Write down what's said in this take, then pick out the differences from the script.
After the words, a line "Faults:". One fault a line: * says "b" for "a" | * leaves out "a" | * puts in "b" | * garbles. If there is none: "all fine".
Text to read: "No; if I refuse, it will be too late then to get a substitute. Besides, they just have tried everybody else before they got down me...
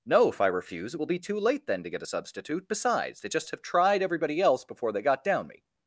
"No; if I refuse, it will be too late then to get a substitute. Besides, they just have tried everybody else before they got down me...
Faults:
all fine